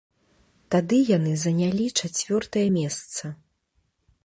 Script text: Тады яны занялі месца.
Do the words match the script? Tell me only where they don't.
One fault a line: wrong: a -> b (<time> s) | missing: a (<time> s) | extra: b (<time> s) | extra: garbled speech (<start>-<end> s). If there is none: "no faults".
extra: чацвёртае (2.0 s)